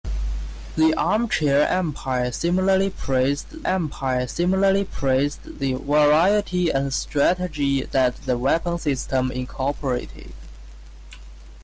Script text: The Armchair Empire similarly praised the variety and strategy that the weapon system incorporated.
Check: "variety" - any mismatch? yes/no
no